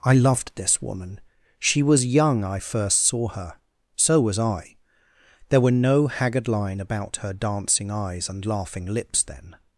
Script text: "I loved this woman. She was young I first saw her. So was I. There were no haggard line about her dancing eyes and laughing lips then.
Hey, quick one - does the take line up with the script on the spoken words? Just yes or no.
yes